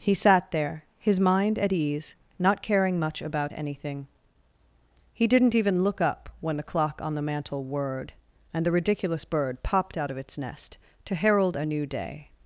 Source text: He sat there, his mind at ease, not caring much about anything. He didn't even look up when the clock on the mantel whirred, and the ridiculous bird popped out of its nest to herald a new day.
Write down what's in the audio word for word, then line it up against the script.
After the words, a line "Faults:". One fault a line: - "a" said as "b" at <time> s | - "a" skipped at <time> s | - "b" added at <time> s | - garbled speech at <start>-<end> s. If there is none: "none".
He sat there, his mind at ease, not caring much about anything. He didn't even look up when the clock on the mantel whirred, and the ridiculous bird popped out of its nest to herald a new day.
Faults:
none